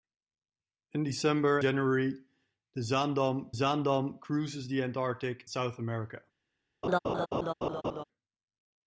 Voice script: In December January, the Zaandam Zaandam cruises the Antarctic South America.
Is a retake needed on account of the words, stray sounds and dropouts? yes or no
yes